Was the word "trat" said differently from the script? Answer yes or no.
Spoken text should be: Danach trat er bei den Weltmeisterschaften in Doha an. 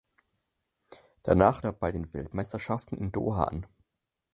yes